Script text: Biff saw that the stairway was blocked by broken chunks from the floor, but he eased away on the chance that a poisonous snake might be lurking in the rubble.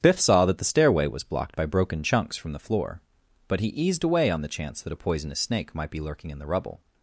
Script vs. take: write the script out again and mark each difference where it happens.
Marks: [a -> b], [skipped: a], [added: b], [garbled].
Biff saw that the stairway was blocked by broken chunks from the floor, but he eased away on the chance that a poisonous snake might be lurking in the rubble.